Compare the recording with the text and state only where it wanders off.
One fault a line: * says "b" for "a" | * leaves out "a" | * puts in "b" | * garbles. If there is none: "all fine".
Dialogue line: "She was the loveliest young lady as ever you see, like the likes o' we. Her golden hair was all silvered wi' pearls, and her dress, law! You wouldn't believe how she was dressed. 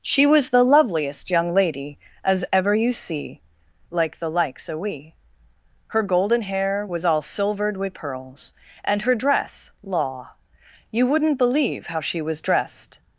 all fine